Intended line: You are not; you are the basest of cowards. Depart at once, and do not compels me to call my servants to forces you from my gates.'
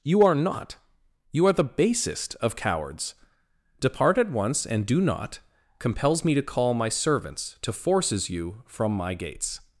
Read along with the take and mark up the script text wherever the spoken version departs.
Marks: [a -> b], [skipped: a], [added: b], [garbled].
You are not; you are the basest of cowards. Depart at once, and do not compels me to call my servants to forces you from my gates.'